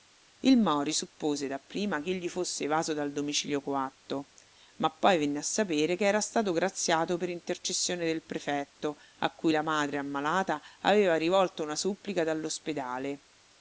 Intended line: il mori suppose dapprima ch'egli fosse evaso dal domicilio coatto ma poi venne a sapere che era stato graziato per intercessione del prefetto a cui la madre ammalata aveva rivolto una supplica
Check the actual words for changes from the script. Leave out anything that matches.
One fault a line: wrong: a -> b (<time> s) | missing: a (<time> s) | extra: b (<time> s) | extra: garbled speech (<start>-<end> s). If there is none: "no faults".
no faults